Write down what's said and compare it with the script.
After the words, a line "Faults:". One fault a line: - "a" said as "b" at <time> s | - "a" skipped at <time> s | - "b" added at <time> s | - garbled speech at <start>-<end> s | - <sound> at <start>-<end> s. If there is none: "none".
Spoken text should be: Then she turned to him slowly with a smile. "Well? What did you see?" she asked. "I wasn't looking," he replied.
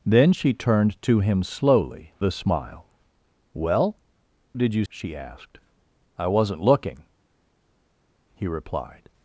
Then she turned to him slowly a smile. "Well? Did you?" she asked. "I wasn't looking," he replied.
Faults:
- "with" skipped at 2.1 s
- "What" skipped at 4.0 s
- "see" skipped at 4.8 s